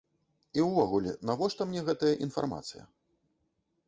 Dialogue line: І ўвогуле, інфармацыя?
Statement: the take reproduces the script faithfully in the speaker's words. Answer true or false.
false